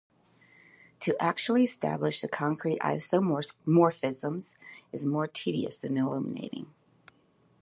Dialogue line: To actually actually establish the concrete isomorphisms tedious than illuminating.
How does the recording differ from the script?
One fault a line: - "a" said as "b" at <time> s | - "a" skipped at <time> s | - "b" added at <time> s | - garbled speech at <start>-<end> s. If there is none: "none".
- "actually" skipped at 1.6 s
- "is more" added at 4.9 s